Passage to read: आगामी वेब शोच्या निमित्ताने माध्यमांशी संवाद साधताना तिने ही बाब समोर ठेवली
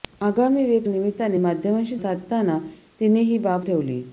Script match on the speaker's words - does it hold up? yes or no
no